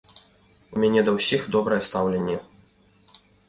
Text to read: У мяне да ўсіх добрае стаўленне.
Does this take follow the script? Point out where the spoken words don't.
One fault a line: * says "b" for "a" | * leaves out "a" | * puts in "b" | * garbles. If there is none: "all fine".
all fine